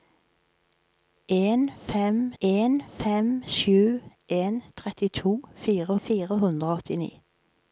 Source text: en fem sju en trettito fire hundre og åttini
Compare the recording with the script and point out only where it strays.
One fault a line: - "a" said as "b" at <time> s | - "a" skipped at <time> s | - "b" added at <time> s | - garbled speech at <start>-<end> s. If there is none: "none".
- "en fem" added at 2.4 s
- "fire" added at 6.1 s